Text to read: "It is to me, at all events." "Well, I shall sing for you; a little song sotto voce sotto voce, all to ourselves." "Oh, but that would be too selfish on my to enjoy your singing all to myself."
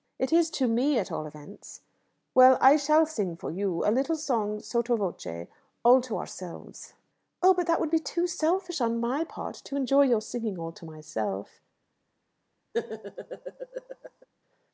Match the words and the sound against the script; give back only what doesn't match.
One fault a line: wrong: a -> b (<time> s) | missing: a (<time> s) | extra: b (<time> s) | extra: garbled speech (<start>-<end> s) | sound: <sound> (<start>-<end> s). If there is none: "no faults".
missing: sotto voce (5.5 s)
extra: part (9.2 s)
sound: laugh (12.7-14.3 s)